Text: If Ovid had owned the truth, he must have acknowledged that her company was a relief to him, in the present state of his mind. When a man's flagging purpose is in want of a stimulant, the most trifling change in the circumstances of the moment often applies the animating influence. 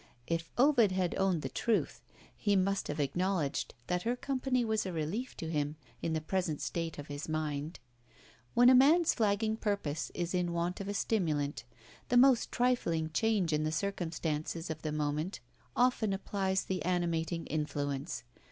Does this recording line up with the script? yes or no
yes